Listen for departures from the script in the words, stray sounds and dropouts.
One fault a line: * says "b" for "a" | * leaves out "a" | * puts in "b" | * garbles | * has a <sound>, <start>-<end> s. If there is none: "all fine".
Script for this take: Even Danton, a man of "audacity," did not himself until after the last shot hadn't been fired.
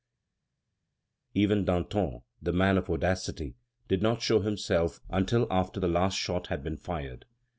* says "the" for "a"
* puts in "show"
* says "had" for "hadn't"